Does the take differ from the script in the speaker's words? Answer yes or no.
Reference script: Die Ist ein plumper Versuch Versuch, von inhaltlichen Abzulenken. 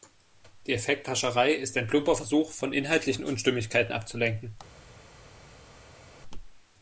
yes